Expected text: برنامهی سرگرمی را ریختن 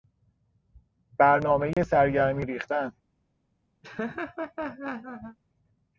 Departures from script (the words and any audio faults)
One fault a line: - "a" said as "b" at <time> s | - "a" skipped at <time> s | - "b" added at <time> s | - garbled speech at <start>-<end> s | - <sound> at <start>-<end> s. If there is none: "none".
- dropout at 1.7-1.8 s
- "را" skipped at 2.5 s
- laugh at 3.8-5.4 s